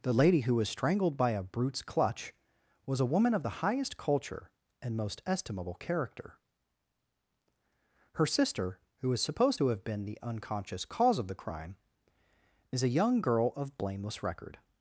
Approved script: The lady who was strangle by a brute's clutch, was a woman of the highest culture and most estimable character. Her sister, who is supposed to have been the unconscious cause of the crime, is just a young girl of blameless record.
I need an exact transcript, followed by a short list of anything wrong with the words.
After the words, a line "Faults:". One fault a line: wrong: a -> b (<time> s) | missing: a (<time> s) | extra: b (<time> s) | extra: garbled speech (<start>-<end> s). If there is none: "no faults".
The lady who was strangled by a brute's clutch, was a woman of the highest culture and most estimable character. Her sister, who is supposed to have been the unconscious cause of the crime, is a young girl of blameless record.
Faults:
wrong: strangle -> strangled (0.7 s)
missing: just (12.8 s)